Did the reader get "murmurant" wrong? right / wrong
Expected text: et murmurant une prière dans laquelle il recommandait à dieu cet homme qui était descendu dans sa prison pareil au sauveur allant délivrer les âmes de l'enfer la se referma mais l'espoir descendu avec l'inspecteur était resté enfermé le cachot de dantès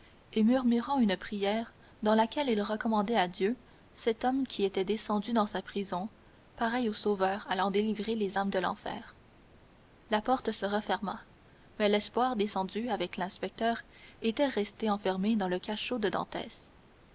right